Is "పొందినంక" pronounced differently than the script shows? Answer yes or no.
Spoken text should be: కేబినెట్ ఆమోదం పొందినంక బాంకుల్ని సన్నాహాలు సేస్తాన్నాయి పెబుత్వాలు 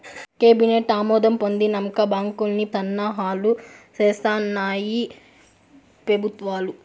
no